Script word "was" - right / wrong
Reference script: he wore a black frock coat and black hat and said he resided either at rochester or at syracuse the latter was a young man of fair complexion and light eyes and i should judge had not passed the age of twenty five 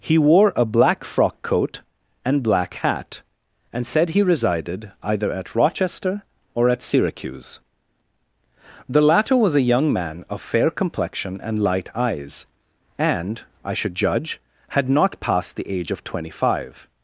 right